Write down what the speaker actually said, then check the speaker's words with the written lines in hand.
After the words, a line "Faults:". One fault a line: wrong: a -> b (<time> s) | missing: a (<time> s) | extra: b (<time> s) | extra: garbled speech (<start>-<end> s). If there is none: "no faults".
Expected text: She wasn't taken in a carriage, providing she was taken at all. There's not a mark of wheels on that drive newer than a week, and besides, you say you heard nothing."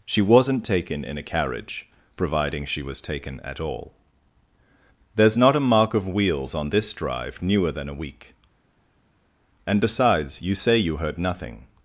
She wasn't taken in a carriage, providing she was taken at all. There's not a mark of wheels on this drive newer than a week, and besides, you say you heard nothing."
Faults:
wrong: that -> this (6.7 s)